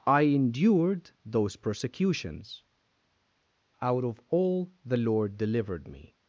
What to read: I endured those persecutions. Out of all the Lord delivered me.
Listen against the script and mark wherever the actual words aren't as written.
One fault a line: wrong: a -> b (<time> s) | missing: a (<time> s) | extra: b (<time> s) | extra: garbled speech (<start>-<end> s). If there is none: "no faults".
no faults